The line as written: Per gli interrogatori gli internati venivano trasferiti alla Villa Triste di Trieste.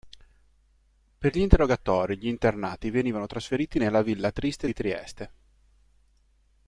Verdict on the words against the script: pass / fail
fail